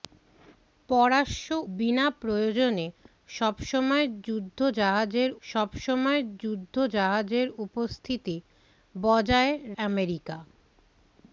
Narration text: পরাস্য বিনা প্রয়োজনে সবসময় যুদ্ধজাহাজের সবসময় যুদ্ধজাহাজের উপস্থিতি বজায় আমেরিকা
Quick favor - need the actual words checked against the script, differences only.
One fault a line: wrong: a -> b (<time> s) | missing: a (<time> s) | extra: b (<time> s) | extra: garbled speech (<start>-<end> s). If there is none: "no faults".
no faults